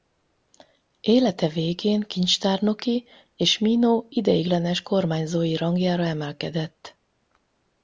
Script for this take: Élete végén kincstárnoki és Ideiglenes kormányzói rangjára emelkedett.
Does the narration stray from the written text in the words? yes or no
yes